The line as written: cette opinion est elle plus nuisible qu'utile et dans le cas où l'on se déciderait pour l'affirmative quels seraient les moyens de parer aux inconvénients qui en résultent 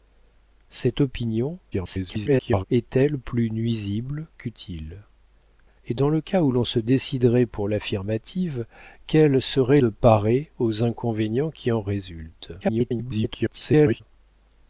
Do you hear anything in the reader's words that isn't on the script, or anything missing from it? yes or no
yes